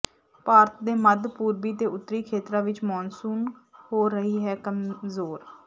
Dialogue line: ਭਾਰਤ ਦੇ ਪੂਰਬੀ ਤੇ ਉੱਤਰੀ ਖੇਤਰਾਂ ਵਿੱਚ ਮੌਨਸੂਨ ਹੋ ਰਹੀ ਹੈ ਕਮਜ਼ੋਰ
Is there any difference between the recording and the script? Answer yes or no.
yes